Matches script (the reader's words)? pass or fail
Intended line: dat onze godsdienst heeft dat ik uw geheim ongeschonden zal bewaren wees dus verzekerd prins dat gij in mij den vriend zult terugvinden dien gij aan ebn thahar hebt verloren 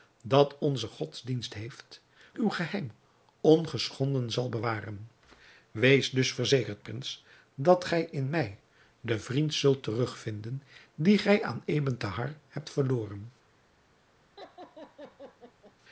fail